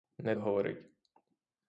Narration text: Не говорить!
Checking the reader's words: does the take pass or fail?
pass